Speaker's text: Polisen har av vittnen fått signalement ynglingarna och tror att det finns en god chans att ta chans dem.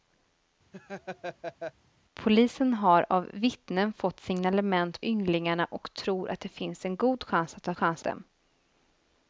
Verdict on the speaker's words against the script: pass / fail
pass